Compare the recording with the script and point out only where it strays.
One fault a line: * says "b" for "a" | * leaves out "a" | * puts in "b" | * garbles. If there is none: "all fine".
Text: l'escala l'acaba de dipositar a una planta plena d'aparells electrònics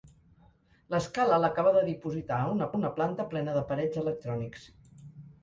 * puts in "una"